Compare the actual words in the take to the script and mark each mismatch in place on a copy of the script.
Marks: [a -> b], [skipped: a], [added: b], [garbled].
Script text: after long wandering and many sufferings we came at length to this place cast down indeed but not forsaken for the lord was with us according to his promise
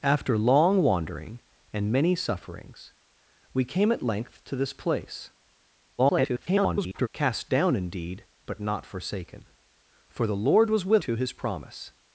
after long wandering and many sufferings we came at length to this place [garbled] cast down indeed but not forsaken for the lord was with [skipped: us according] to his promise